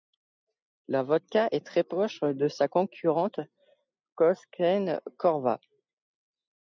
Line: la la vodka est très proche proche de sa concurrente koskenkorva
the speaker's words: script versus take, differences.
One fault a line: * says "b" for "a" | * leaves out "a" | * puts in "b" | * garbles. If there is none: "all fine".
* leaves out "la"
* leaves out "proche"